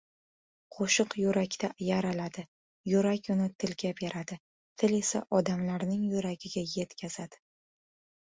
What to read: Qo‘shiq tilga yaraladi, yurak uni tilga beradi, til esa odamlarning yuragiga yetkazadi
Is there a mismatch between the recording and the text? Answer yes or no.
yes